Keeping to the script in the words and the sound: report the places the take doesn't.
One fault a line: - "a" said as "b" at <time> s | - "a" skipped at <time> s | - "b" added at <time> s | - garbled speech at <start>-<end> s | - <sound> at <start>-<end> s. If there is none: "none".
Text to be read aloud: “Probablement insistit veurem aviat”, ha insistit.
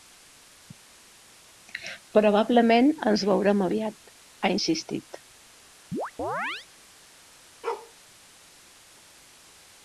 - "insistit" said as "ens" at 3.1 s
- chirp at 5.9-6.7 s
- bark at 7.6-7.9 s